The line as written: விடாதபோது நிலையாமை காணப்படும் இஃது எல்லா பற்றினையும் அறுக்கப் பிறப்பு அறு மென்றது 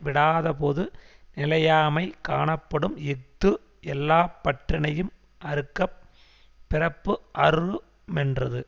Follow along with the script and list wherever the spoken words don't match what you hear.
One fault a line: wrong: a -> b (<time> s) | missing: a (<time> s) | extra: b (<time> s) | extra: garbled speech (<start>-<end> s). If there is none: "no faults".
no faults